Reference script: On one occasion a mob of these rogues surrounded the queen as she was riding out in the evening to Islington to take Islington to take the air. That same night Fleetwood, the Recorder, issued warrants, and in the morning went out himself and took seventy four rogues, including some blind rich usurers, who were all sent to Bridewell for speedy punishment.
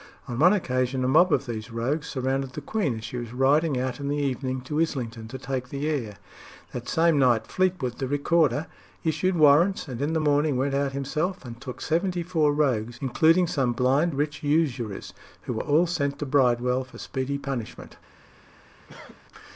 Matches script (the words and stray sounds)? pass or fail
fail